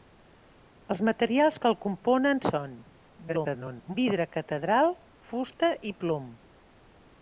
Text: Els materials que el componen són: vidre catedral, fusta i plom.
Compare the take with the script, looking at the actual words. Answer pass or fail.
fail